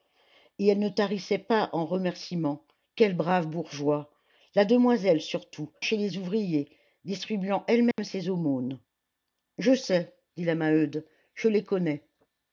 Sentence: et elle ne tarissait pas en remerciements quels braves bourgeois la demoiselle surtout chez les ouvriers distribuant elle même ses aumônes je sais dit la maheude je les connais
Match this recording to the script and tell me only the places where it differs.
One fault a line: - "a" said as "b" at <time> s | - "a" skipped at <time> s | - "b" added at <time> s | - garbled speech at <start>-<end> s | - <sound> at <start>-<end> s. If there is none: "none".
- dropout at 7.9-8.0 s